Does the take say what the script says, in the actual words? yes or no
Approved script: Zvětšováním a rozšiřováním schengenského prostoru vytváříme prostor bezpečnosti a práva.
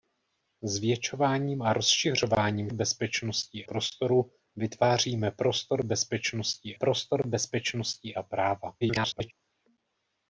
no